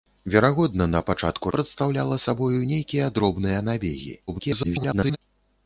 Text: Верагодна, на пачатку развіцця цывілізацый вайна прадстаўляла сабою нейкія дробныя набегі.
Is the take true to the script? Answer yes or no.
no